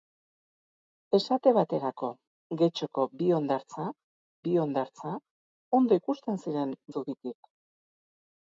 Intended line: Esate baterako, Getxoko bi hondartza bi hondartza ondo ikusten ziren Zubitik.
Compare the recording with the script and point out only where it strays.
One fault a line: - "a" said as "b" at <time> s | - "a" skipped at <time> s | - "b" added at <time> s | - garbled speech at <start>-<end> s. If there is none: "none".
none